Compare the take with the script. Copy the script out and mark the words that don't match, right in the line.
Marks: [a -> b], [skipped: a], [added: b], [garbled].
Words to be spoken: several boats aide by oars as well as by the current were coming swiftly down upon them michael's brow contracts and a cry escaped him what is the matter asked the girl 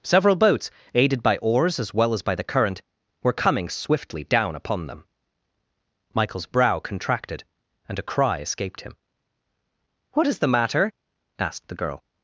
several boats [aide -> aided] by oars as well as by the current were coming swiftly down upon them michael's brow [contracts -> contracted] and a cry escaped him what is the matter asked the girl